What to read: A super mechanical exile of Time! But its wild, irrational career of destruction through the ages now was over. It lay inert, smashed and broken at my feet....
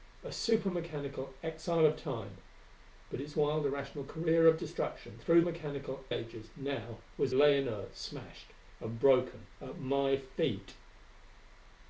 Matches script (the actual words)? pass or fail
fail